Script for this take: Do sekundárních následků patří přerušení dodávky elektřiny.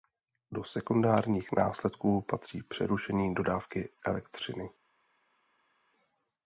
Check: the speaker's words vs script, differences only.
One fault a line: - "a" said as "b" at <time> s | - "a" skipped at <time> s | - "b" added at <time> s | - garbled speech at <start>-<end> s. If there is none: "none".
none